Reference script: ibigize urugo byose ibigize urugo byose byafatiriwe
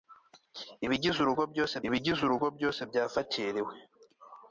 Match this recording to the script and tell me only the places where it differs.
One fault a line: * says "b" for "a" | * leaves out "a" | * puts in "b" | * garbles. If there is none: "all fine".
all fine